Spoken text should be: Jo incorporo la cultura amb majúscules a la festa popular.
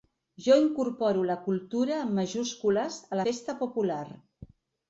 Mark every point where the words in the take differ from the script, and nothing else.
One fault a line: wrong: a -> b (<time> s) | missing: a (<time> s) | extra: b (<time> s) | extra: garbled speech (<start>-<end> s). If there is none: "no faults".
missing: la (3.2 s)